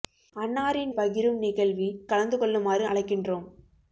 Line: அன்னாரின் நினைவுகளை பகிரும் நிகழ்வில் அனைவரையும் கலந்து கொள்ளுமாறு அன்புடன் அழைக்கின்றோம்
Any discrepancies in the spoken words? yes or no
yes